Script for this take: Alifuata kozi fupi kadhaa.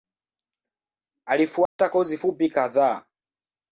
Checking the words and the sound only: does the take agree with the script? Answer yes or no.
no